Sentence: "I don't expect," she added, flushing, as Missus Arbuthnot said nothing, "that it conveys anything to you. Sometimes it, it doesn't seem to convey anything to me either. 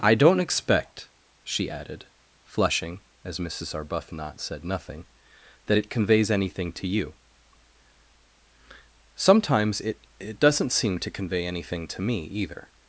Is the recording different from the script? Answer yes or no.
no